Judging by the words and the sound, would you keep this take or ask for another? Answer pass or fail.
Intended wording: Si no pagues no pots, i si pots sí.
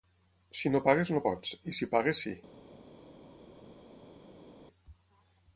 fail